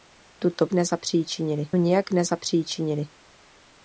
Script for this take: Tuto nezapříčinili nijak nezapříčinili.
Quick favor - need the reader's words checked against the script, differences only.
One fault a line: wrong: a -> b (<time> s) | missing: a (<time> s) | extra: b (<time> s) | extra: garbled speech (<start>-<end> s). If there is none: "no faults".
no faults